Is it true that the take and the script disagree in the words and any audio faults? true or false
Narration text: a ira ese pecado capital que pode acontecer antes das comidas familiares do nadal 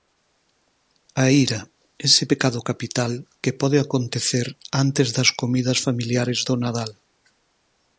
false